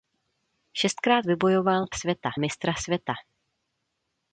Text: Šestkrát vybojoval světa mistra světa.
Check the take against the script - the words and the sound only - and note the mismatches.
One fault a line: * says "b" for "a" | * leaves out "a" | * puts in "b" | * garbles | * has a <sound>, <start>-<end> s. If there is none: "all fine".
all fine